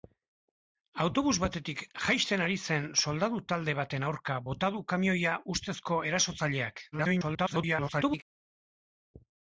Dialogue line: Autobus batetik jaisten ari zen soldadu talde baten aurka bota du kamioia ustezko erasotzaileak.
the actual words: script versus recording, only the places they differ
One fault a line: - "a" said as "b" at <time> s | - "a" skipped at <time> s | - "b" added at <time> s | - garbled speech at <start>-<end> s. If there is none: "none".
- garbled speech at 6.9-8.2 s